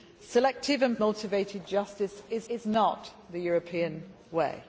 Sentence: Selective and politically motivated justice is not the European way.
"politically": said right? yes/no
no